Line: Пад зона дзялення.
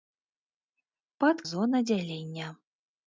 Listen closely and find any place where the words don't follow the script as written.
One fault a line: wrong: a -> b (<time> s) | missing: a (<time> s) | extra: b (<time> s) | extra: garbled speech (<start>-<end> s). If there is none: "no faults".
no faults